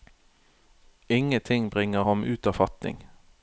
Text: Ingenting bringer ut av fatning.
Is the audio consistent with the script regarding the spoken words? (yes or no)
no